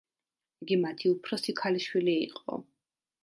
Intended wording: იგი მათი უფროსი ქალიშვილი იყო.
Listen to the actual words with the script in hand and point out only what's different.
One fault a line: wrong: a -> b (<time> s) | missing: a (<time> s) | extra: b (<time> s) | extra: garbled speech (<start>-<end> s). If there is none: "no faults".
no faults